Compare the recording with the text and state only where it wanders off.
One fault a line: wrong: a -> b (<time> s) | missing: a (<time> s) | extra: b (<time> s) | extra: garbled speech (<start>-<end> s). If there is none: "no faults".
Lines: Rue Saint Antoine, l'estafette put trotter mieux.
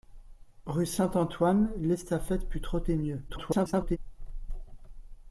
extra: garbled speech (3.3-4.0 s)